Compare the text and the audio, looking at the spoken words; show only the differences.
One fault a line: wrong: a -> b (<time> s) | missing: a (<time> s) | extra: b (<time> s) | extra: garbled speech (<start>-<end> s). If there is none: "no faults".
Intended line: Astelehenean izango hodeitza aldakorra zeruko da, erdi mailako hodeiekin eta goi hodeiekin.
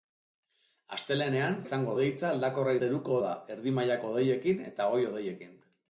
no faults